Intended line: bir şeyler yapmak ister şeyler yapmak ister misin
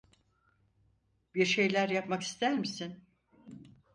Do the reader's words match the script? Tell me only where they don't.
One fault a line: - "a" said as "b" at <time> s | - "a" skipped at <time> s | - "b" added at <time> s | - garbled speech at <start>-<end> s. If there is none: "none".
- "şeyler yapmak ister" skipped at 2.6 s